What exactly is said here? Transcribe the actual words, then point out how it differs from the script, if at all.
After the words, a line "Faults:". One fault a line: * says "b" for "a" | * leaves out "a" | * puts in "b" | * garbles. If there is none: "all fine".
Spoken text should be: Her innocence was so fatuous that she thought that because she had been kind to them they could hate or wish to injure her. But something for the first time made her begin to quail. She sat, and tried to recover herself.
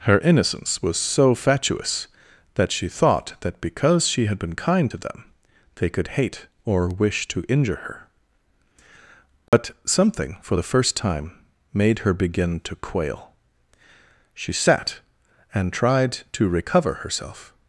Her innocence was so fatuous that she thought that because she had been kind to them they could hate or wish to injure her. But something for the first time made her begin to quail. She sat, and tried to recover herself.
Faults:
all fine